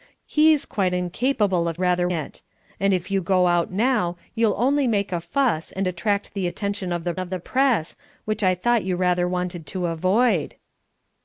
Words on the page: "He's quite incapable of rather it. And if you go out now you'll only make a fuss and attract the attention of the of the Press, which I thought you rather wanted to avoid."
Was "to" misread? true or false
false